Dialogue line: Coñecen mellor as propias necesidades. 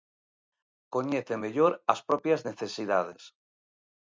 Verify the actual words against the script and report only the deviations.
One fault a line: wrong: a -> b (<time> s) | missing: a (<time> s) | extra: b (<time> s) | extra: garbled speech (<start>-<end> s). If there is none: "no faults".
no faults